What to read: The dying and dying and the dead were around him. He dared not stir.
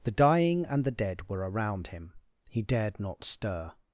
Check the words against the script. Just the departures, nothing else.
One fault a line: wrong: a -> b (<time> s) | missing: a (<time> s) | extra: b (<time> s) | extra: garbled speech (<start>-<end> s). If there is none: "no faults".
missing: dying and (0.8 s)